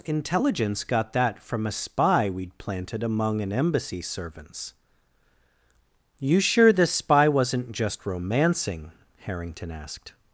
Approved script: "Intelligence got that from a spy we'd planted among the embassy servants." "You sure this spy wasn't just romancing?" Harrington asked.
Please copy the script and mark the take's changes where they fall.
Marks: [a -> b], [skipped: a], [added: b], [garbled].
"Intelligence got that from a spy we'd planted among [the -> an] embassy servants." "You sure this spy wasn't just romancing?" Harrington asked.